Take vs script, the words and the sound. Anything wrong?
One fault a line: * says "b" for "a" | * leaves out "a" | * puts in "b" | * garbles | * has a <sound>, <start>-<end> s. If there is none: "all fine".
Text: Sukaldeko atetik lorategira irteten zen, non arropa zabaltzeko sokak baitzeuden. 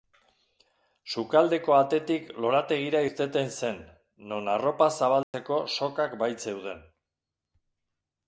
* has a dropout, 5.2-5.3 s